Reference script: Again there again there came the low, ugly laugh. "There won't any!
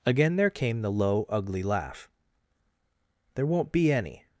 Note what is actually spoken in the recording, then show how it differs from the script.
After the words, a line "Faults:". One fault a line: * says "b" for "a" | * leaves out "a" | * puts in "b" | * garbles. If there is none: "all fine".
Again there came the low, ugly laugh. "There won't be any!
Faults:
* leaves out "again there"
* puts in "be"